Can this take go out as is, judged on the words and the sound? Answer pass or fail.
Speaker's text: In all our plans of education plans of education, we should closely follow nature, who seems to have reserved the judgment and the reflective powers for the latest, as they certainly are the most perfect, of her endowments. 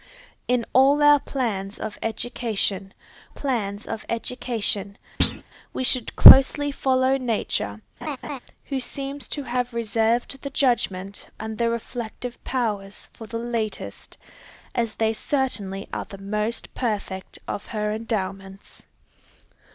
fail